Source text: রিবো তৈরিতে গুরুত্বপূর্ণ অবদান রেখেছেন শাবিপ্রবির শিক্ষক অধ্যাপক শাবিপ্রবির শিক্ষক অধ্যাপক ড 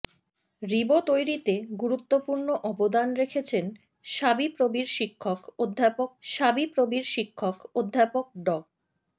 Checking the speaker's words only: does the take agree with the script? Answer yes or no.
yes